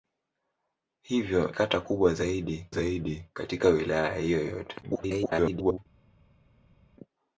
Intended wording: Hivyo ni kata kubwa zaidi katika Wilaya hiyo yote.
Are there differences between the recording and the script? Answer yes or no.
yes